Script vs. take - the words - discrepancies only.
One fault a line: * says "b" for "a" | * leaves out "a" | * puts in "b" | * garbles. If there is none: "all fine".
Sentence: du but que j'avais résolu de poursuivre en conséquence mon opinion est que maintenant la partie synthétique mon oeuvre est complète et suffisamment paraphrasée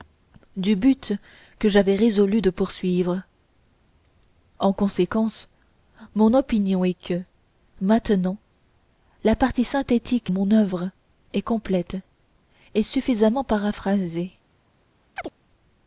all fine